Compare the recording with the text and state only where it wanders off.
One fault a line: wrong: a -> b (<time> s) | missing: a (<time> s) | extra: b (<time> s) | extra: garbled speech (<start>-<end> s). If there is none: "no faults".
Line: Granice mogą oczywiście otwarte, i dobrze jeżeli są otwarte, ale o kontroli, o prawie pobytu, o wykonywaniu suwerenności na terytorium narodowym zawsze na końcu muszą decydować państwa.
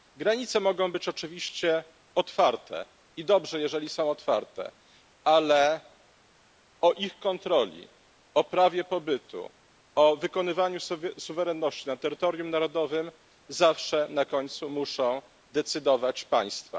extra: być (0.9 s)
extra: ich (6.9 s)